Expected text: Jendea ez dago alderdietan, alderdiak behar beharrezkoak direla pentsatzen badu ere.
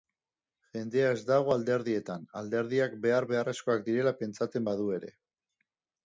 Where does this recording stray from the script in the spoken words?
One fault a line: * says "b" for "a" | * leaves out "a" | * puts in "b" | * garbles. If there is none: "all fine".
all fine